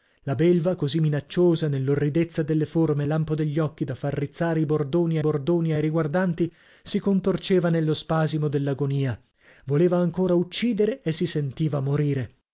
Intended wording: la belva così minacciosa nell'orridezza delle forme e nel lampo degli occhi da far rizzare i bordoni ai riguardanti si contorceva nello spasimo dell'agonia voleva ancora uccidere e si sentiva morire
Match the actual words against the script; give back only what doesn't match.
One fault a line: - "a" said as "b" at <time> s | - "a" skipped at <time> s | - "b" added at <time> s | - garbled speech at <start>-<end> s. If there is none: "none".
- "nel" skipped at 3.0 s
- "bordoni" added at 5.2 s